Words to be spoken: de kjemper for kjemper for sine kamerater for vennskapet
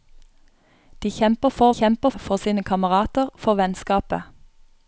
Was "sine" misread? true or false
false